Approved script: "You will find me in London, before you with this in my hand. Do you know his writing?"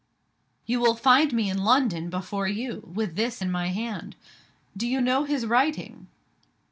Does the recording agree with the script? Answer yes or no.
yes